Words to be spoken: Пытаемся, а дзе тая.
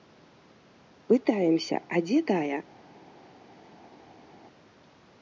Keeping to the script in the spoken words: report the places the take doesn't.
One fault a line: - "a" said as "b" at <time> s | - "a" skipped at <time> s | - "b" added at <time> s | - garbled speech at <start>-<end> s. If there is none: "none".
none